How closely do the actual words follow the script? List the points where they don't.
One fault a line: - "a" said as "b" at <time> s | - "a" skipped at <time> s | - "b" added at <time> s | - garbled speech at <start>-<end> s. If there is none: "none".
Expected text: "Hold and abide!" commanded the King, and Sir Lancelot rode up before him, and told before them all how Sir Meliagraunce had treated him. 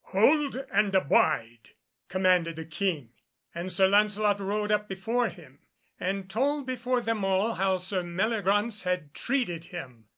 none